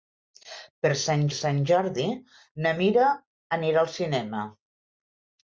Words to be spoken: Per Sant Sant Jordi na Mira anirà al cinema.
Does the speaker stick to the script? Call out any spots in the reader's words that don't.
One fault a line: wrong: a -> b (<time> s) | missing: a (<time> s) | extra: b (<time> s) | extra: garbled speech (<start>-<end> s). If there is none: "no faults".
no faults